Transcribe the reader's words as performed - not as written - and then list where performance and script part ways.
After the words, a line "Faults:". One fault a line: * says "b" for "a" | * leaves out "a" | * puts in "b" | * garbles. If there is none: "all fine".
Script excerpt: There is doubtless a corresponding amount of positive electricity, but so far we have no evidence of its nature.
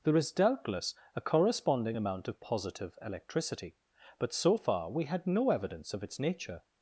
There is doubtless a corresponding amount of positive electricity, but so far we had no evidence of its nature.
Faults:
* says "had" for "have"